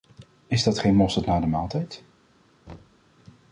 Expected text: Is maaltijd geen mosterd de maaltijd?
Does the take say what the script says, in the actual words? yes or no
no